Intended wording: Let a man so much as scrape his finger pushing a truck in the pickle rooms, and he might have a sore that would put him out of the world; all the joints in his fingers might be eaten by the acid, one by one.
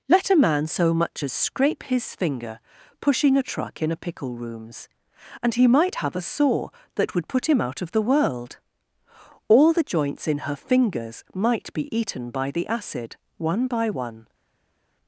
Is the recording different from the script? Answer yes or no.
yes